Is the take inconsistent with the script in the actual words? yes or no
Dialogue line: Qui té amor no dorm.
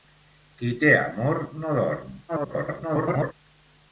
yes